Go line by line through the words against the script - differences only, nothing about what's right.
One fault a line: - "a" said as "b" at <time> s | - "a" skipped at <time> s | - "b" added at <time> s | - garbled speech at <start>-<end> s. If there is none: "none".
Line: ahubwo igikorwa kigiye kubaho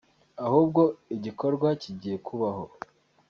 none